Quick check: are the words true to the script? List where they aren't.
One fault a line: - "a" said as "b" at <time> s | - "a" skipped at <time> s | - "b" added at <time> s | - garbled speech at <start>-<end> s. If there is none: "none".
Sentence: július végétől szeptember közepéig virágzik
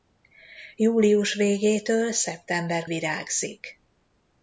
- "közepéig" skipped at 2.9 s